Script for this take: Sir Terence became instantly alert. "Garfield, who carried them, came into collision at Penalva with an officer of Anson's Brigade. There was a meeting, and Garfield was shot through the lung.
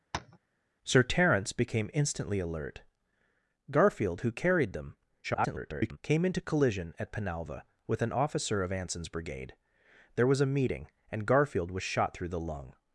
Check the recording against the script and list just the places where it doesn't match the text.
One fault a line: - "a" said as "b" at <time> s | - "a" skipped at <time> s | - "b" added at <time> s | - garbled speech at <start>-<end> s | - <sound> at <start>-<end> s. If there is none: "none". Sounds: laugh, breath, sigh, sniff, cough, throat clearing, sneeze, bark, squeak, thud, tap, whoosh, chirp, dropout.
- tap at 0.1-0.4 s
- garbled speech at 5.2-6.0 s